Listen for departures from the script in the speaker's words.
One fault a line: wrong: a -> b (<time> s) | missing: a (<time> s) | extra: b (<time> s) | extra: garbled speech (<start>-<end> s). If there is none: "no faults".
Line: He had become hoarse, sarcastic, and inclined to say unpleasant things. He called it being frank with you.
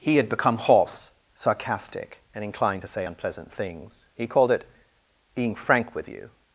no faults